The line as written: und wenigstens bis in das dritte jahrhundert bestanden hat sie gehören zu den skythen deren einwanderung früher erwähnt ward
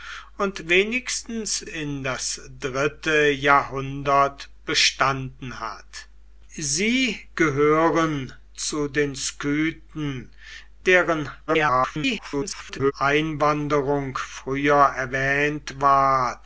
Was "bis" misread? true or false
true